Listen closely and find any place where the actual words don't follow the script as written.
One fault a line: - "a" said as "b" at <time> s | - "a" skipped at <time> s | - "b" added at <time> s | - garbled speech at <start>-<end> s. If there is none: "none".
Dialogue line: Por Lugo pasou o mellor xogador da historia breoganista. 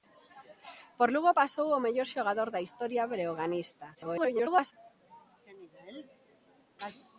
- garbled speech at 3.9-4.7 s